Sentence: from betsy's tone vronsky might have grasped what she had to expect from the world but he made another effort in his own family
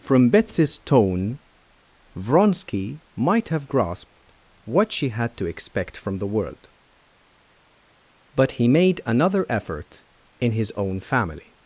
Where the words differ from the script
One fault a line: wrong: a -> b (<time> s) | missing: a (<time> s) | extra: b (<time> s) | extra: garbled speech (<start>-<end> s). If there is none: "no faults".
no faults